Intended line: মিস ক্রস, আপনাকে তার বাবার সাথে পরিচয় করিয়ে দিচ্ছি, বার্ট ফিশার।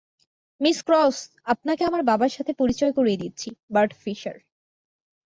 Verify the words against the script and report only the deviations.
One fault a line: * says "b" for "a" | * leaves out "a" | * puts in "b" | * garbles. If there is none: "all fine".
* says "আমার" for "তার"